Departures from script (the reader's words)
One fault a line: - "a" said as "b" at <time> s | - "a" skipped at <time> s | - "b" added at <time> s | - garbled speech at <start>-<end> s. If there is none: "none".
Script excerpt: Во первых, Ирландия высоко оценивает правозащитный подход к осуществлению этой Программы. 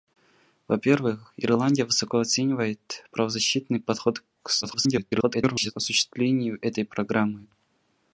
- garbled speech at 4.6-5.7 s